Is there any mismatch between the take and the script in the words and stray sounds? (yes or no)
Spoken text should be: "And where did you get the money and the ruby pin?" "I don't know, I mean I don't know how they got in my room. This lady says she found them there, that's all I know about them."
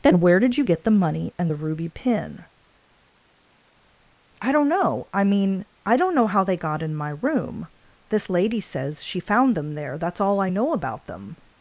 yes